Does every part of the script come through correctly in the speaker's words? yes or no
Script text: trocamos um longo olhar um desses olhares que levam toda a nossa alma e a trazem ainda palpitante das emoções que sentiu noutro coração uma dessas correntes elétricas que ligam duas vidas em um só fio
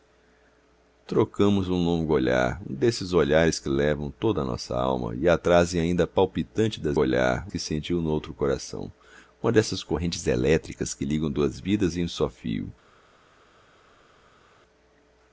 no